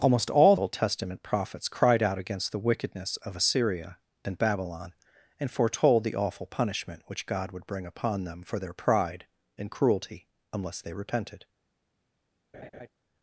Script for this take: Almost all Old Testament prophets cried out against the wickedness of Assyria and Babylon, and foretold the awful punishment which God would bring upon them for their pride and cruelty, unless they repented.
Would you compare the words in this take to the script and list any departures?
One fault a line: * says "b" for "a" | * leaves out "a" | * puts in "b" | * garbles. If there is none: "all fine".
all fine